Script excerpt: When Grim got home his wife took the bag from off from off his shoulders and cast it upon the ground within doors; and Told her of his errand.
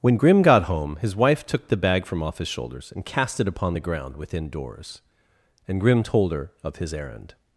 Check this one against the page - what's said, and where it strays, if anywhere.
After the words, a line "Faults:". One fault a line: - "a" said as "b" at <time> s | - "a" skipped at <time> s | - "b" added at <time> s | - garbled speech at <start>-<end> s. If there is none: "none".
When Grim got home his wife took the bag from off his shoulders and cast it upon the ground within doors; and Grim told her of his errand.
Faults:
- "from off" skipped at 2.4 s
- "Grim" added at 5.8 s